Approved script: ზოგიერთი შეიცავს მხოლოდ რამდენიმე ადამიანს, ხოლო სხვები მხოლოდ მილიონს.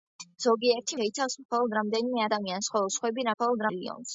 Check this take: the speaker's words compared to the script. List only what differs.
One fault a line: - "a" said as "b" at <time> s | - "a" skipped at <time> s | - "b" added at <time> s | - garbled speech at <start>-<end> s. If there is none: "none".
none